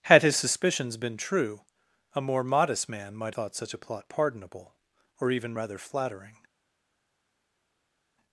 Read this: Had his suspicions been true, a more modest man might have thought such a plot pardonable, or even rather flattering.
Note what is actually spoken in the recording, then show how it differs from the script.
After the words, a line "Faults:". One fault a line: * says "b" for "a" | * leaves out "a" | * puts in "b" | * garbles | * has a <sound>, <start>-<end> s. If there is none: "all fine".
Had his suspicions been true, a more modest man might thought such a plot pardonable, or even rather flattering.
Faults:
* leaves out "have"